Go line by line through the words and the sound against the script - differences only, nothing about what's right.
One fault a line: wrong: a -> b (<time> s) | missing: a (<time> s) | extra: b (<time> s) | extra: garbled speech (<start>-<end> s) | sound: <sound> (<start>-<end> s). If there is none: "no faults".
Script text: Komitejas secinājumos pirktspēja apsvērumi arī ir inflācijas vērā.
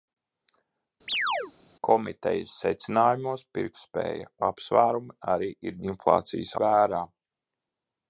sound: chirp (1.1-1.5 s)